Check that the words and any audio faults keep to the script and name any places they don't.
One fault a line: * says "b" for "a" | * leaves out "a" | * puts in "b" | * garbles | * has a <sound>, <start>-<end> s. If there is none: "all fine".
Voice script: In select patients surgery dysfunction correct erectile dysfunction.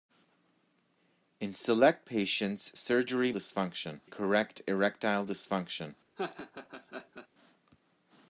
* has a laugh, 6.2-7.3 s